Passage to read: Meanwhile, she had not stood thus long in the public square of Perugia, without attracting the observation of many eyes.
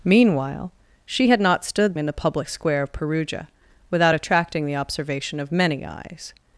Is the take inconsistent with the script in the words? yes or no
yes